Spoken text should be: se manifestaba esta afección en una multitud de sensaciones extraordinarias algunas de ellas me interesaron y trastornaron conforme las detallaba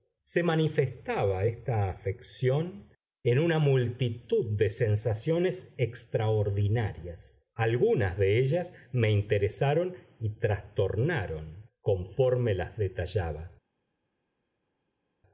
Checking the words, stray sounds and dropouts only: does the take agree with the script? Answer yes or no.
yes